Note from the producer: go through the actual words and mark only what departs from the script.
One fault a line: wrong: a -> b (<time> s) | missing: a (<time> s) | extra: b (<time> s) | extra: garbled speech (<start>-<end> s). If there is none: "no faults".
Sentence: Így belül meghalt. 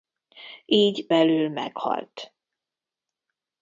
no faults